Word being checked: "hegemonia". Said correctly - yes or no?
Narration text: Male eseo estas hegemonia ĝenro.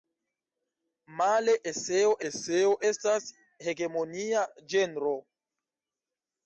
yes